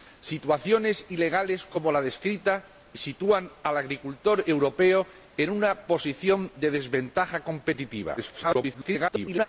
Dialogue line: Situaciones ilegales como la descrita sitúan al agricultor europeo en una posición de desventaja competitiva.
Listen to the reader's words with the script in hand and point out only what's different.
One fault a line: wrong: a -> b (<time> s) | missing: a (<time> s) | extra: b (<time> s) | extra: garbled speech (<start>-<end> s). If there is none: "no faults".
extra: garbled speech (8.2-9.5 s)